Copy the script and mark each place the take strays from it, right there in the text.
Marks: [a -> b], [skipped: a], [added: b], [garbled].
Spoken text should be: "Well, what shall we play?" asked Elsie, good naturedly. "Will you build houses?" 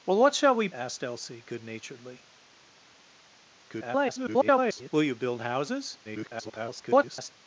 "Well, what shall we [skipped: play?"] asked Elsie, good naturedly. [garbled] "Will you build houses?" [garbled]